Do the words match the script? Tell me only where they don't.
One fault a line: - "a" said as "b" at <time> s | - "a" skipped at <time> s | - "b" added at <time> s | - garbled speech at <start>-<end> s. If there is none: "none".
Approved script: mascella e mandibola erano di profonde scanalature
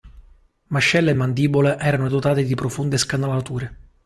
- "dotate" added at 2.1 s